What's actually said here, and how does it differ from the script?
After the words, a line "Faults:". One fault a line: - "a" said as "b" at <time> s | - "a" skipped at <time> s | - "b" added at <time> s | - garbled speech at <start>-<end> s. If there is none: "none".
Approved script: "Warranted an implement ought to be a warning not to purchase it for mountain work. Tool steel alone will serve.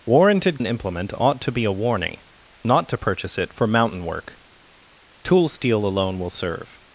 "Warranted an implement ought to be a warning not to purchase it for mountain work. Tool steel alone will serve.
Faults:
none